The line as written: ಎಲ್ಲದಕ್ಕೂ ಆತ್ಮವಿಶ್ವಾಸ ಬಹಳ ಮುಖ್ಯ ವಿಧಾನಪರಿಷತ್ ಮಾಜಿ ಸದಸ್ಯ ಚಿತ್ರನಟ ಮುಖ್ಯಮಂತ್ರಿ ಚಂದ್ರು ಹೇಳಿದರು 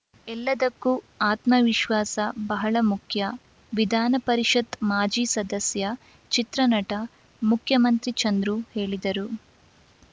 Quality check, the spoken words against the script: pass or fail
pass